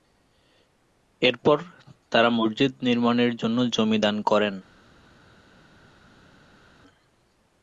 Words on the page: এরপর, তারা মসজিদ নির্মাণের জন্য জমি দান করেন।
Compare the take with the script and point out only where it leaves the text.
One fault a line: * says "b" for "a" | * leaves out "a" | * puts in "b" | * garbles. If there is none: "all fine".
all fine